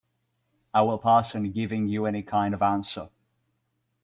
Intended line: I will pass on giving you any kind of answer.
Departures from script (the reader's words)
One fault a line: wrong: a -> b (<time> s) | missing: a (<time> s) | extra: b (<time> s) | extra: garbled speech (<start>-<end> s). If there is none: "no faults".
no faults